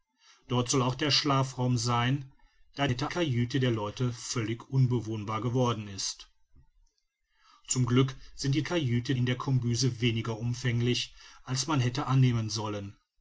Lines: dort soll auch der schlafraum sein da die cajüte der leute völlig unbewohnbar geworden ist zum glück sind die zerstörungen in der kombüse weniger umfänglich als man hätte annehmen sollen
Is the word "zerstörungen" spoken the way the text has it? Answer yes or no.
no